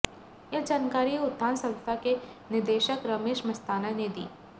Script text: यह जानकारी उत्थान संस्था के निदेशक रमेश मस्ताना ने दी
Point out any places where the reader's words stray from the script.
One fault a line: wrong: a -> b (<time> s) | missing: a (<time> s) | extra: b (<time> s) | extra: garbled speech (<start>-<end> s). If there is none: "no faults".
no faults